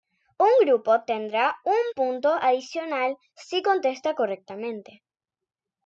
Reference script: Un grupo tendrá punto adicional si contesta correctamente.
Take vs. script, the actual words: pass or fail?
fail